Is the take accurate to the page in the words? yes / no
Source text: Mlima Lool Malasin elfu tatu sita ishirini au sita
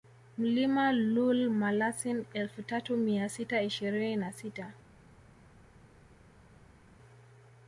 no